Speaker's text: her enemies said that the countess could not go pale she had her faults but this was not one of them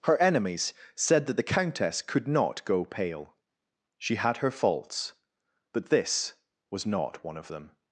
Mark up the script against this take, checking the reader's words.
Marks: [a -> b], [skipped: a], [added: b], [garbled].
her enemies said that the countess could not go pale she had her faults but this was not one of them